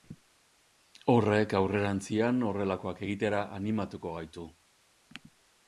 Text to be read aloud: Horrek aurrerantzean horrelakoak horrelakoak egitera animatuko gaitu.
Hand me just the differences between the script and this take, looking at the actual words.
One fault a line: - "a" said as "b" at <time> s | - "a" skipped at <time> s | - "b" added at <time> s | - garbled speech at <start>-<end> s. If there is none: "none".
- "horrelakoak" skipped at 3.0 s